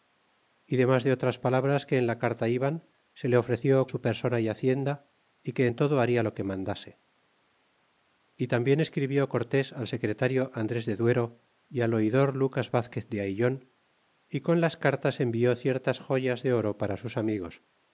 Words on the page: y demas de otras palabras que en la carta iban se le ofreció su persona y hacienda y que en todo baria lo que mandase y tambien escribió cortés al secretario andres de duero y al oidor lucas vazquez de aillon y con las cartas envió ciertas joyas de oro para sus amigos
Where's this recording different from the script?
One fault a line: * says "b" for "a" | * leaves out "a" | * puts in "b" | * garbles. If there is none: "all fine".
all fine